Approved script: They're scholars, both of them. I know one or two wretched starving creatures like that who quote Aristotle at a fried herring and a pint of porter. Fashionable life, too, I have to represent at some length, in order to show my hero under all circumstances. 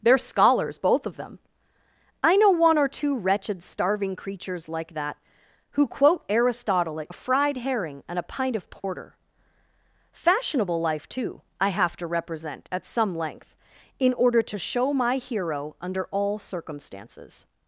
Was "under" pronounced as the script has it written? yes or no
yes